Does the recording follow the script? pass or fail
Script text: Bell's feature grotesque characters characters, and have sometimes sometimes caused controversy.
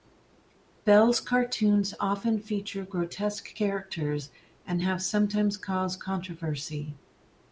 fail